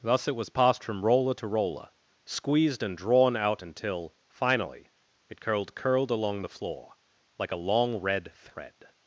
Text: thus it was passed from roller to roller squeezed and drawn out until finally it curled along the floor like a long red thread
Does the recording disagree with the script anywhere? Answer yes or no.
yes